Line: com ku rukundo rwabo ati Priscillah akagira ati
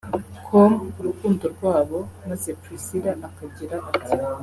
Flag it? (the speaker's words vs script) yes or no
yes